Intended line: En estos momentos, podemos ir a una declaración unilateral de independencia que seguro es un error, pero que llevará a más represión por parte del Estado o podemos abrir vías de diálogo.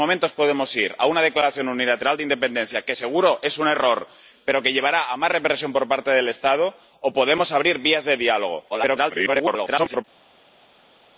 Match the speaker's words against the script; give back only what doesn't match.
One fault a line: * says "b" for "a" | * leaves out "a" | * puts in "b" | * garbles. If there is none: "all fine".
* garbles